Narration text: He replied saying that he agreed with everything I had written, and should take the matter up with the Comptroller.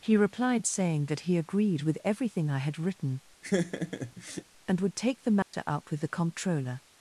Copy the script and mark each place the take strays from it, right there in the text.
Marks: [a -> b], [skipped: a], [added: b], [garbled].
He replied saying that he agreed with everything I had written, and [should -> would] take the matter up with the Comptroller.